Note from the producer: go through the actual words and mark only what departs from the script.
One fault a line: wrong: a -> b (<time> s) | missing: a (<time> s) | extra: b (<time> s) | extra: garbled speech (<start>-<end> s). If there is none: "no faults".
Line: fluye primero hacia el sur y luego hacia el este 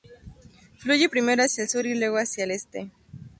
no faults